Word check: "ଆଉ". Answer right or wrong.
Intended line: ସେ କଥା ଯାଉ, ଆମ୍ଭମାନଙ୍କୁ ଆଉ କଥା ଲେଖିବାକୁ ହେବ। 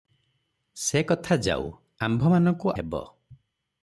wrong